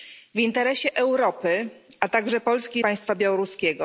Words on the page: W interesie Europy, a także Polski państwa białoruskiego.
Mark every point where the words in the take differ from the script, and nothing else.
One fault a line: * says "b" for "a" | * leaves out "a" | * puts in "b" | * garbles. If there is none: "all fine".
all fine